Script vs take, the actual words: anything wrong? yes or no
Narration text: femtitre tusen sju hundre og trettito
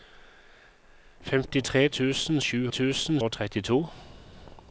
yes